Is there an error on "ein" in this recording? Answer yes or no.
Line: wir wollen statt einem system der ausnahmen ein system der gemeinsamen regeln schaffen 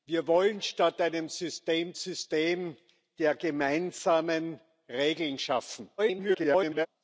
yes